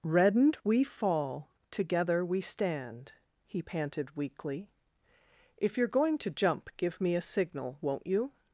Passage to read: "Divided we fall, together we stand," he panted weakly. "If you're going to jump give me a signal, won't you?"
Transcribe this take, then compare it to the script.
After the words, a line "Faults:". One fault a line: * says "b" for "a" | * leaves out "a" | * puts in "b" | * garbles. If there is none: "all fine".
"Reddened we fall, together we stand," he panted weakly. "If you're going to jump give me a signal, won't you?"
Faults:
* says "Reddened" for "Divided"